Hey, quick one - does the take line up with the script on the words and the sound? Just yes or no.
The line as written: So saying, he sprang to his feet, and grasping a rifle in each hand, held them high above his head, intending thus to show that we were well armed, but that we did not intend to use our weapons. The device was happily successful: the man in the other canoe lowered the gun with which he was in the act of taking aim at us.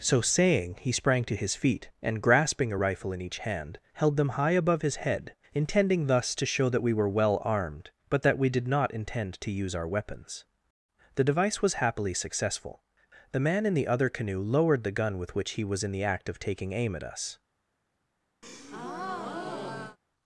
no